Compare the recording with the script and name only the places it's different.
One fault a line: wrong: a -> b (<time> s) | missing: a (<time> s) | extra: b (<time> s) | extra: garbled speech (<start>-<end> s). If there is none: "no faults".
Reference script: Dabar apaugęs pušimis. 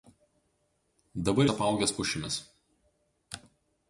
no faults